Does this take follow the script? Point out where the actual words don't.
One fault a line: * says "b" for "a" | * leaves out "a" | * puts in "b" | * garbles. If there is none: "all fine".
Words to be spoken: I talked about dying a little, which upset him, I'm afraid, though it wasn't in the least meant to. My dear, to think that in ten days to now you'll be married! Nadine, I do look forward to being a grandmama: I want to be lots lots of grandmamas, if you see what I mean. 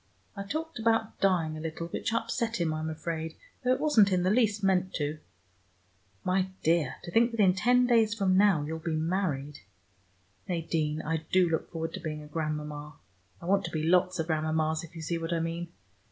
* says "from" for "to"
* leaves out "lots"